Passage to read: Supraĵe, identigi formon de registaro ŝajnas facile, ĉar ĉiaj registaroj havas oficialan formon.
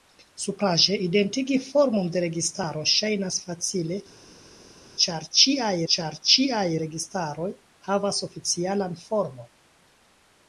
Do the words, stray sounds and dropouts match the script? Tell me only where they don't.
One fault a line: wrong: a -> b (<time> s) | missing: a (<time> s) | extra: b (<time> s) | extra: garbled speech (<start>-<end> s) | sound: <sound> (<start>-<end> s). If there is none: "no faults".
extra: ĉar ĉiaj (5.9 s)